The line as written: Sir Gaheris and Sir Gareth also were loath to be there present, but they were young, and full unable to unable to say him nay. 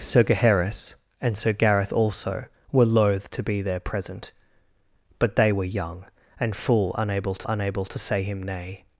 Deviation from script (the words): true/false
false